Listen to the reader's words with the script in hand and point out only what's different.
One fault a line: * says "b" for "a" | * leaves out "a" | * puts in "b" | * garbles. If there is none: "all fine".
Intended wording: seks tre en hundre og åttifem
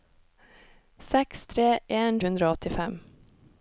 all fine